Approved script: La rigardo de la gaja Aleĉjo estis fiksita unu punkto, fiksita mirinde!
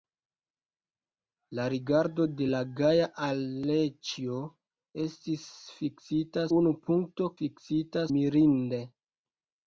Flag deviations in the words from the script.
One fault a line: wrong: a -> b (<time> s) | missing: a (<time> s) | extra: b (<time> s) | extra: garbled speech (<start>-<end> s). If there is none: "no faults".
no faults